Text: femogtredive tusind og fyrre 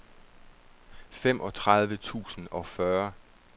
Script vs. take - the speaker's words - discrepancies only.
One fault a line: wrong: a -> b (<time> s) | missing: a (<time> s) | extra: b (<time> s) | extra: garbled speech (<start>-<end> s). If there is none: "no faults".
no faults